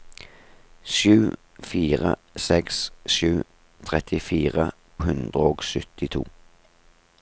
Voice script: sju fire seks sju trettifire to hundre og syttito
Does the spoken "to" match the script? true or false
false